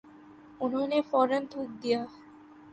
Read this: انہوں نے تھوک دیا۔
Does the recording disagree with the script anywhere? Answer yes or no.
yes